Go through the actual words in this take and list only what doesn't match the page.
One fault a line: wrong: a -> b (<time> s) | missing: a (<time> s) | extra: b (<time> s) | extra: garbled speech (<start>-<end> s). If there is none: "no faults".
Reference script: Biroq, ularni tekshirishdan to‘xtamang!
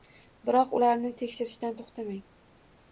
no faults